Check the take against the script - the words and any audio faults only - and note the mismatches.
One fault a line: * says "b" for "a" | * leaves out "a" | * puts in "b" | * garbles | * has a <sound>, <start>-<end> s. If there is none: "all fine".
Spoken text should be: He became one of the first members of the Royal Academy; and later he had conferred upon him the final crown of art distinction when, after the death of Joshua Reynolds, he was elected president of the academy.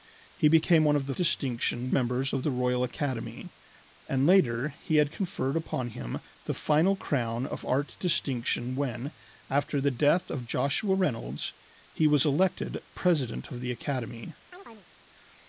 * says "distinction" for "first"
* has a chirp, 14.5-14.9 s